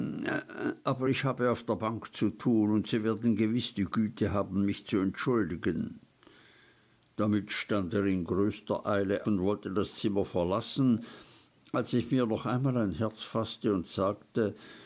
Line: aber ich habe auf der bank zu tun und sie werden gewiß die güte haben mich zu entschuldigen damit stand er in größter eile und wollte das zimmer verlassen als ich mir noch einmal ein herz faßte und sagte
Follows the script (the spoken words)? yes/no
yes